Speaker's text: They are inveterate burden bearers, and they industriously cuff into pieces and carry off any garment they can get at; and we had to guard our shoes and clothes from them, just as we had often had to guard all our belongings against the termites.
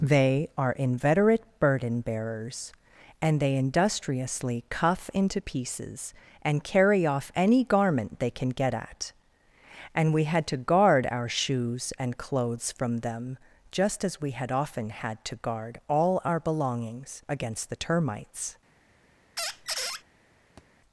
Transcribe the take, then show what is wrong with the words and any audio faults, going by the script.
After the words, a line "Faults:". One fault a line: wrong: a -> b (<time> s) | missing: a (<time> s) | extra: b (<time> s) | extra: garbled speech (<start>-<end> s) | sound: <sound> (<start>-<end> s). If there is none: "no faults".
They are inveterate burden bearers, and they industriously cuff into pieces and carry off any garment they can get at; and we had to guard our shoes and clothes from them, just as we had often had to guard all our belongings against the termites.
Faults:
sound: squeak (19.4-20.0 s)
sound: thud (20.6-20.7 s)